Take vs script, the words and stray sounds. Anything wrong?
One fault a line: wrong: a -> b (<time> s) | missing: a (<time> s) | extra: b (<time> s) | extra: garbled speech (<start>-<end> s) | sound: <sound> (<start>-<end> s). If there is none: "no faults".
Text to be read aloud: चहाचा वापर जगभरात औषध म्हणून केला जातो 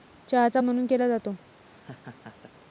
missing: वापर जगभरात औषध (0.6 s)
sound: laugh (1.6-2.5 s)